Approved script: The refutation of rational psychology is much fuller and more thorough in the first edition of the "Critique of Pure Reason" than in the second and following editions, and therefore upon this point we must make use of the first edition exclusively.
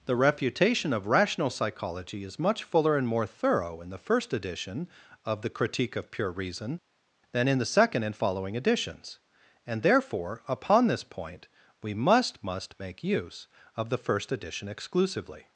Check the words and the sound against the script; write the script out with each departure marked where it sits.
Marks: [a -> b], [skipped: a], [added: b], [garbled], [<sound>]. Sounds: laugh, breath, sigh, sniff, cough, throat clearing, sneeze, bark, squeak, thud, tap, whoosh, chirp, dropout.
The refutation of rational psychology is much fuller and more thorough in the first edition of the "Critique of Pure Reason" than in the second and following editions, and therefore upon this point we must [added: must] make use of the first edition exclusively.